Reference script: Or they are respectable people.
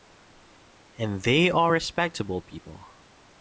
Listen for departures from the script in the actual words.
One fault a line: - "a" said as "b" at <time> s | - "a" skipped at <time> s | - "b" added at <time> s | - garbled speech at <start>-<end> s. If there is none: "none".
- "Or" said as "And" at 1.0 s